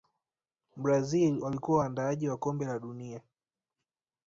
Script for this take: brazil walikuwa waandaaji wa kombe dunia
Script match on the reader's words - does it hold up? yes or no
no